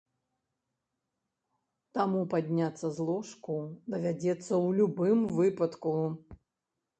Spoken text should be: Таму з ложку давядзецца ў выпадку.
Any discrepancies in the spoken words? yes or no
yes